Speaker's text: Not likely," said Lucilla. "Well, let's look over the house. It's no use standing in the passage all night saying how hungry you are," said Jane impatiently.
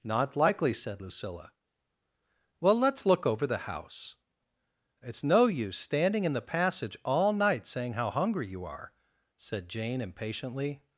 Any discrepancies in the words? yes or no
no